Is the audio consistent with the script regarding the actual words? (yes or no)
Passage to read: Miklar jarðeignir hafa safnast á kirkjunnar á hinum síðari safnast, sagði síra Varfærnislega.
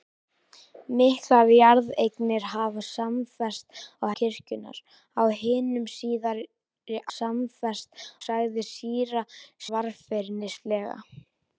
yes